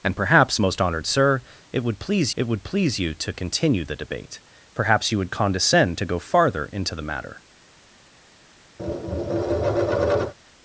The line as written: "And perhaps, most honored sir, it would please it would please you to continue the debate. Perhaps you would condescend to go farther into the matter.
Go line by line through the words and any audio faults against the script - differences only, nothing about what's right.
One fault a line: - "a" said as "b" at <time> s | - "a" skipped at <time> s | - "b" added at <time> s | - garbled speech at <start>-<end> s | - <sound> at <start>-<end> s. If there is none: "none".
- tap at 8.8-10.3 s